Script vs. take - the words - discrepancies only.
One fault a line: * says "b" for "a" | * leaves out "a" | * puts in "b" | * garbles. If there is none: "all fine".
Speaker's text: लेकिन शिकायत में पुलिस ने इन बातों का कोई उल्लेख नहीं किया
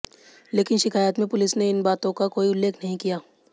all fine